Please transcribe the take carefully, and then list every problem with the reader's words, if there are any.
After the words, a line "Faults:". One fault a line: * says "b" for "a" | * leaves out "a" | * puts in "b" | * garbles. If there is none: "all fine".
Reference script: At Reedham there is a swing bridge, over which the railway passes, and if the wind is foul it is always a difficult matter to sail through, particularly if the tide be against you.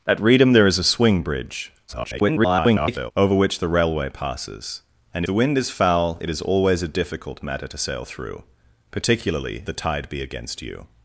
At Reedham there is a swing bridge, [garbled] over which the railway passes, and the wind is foul it is always a difficult matter to sail through, particularly the tide be against you.
Faults:
* garbles
* leaves out "if"
* leaves out "if"